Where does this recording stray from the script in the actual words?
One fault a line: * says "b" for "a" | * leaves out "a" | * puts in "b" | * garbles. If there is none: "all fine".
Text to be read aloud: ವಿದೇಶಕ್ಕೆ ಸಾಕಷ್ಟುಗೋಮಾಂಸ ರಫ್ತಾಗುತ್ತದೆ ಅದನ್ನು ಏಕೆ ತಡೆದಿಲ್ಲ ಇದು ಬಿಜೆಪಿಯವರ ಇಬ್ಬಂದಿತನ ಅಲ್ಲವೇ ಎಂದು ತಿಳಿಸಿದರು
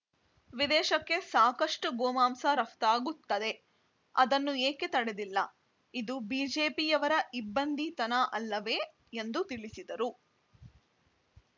all fine